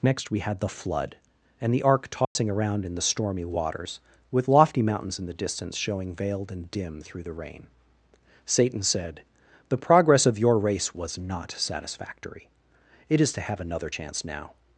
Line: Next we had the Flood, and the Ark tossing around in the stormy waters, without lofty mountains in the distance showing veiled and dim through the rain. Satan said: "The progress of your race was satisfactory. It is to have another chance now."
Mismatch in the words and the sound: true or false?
true